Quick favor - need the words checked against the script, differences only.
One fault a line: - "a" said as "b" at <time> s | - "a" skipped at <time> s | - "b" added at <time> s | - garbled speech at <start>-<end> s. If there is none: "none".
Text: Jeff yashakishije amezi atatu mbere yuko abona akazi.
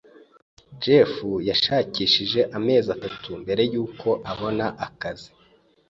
none